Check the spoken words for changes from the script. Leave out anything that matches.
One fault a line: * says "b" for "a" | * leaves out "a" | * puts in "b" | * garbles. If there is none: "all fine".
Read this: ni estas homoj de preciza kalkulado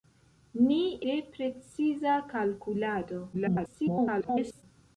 * leaves out "estas homoj"
* garbles